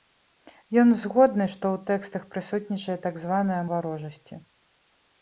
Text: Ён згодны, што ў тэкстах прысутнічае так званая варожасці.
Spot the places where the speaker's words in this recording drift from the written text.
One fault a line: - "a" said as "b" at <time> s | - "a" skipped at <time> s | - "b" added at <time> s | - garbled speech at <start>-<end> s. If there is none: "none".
none